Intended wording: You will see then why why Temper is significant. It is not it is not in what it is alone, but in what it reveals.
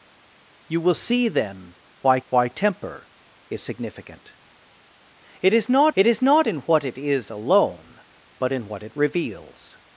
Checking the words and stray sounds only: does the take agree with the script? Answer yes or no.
yes